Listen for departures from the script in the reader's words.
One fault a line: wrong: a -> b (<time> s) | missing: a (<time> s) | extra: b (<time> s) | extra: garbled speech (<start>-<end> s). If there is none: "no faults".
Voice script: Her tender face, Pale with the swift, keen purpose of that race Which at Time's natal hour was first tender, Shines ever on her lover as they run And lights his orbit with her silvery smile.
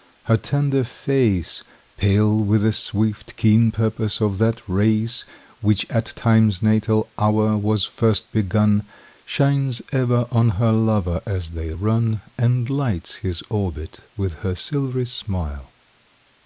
wrong: tender -> begun (8.3 s)